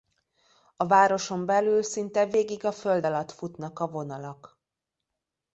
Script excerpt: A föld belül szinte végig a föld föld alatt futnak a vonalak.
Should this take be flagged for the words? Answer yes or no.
yes